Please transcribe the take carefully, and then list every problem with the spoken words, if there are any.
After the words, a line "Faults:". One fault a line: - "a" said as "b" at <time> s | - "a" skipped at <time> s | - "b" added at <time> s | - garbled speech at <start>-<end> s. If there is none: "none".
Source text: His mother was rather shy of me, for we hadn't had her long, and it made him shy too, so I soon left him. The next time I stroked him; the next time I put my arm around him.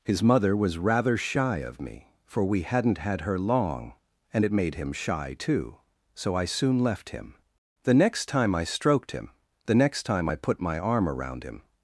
His mother was rather shy of me, for we hadn't had her long, and it made him shy too, so I soon left him. The next time I stroked him; the next time I put my arm around him.
Faults:
none